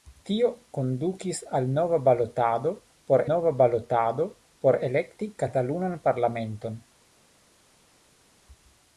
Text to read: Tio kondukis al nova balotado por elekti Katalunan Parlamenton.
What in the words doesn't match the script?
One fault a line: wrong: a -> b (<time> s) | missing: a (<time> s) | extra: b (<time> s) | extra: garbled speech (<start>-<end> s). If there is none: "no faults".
extra: nova balotado por (3.3 s)